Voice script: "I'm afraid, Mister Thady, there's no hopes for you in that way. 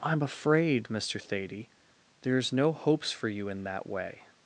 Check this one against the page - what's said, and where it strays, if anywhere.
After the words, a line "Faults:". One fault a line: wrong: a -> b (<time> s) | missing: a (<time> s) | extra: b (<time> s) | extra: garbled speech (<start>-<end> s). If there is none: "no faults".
"I'm afraid, Mister Thady, there's no hopes for you in that way.
Faults:
no faults